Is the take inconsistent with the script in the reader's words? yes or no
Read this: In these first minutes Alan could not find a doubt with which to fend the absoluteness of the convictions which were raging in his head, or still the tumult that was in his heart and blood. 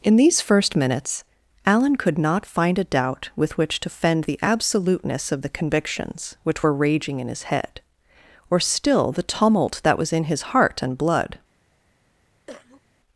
no